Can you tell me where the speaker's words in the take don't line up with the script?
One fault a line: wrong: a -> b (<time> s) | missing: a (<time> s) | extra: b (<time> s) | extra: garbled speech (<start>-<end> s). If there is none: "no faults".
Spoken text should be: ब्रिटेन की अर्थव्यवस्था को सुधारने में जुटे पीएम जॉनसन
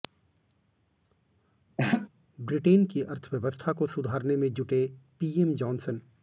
no faults